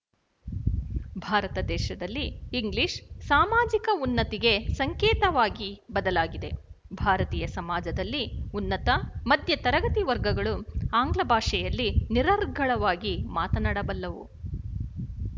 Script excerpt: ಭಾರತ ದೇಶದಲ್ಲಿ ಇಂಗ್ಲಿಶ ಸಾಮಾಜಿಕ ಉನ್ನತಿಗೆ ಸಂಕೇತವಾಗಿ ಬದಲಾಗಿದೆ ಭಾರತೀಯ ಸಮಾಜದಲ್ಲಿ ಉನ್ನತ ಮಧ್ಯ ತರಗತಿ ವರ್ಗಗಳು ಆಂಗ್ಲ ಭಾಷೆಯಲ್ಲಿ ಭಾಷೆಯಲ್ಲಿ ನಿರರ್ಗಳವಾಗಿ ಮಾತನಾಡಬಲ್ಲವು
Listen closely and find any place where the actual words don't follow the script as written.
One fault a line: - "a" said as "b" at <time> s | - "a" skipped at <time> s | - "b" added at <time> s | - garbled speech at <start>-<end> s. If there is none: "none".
- "ಭಾಷೆಯಲ್ಲಿ" skipped at 11.9 s